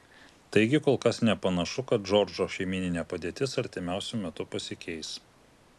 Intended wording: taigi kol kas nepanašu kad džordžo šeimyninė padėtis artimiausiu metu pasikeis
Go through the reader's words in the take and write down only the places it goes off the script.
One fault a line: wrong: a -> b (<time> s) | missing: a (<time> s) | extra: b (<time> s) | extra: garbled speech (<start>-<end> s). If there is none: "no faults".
no faults